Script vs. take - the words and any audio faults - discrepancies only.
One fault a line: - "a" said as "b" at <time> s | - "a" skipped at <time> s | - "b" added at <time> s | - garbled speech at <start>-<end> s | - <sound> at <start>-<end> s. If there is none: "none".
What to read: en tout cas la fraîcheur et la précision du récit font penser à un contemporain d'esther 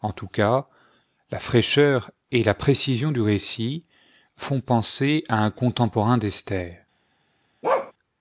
- bark at 7.6-7.9 s